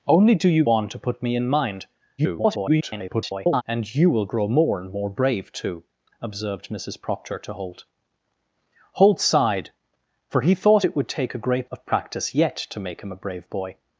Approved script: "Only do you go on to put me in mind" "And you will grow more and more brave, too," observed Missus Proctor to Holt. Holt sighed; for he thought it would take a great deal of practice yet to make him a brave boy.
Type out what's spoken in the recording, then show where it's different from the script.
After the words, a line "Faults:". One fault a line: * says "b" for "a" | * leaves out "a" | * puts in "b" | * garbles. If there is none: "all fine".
"Only do you on to put me in mind" [garbled] "And you will grow more and more brave, too," observed Missus Proctor to Holt. Holt sighed; for he thought it would take a great of practice yet to make him a brave boy.
Faults:
* leaves out "go"
* garbles
* leaves out "deal"